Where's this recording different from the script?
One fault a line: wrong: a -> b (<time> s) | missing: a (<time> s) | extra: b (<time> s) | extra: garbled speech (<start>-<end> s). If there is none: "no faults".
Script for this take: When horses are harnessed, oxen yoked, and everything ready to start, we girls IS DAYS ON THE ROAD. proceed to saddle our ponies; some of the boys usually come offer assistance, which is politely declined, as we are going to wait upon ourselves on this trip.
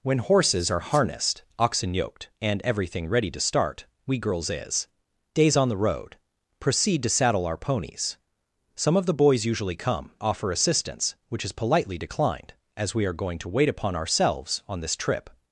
no faults